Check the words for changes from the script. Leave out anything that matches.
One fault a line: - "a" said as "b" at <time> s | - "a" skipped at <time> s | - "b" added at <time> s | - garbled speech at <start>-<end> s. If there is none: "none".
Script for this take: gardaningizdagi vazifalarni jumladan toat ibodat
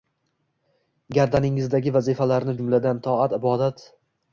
none